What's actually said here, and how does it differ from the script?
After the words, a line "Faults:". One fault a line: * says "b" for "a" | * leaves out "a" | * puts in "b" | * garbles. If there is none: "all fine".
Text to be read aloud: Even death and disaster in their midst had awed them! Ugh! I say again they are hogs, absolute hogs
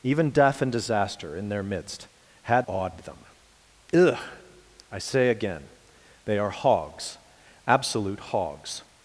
Even death and disaster in their midst had awed them! Ugh! I say again they are hogs, absolute hogs
Faults:
all fine